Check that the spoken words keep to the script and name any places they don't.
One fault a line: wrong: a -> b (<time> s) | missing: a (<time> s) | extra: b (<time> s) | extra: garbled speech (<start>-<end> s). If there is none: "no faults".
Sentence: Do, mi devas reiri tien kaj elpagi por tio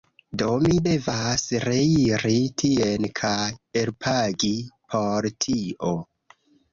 no faults